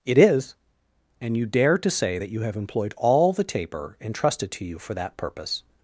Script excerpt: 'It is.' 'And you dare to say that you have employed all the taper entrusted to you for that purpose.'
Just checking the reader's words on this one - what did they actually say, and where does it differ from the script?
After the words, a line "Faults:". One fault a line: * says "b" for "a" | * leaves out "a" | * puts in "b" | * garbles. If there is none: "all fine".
'It is.' 'And you dare to say that you have employed all the taper entrusted to you for that purpose.'
Faults:
all fine